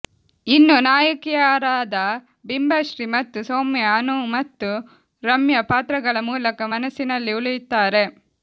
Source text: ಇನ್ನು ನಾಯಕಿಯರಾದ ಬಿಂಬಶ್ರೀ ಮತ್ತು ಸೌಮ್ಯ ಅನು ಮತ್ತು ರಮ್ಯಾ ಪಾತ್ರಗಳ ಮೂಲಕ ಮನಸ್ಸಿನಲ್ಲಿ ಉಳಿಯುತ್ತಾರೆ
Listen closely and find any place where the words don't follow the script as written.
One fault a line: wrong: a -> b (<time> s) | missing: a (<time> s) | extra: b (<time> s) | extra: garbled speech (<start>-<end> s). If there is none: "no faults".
no faults